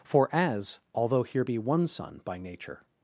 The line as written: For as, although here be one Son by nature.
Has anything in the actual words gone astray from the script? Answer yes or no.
no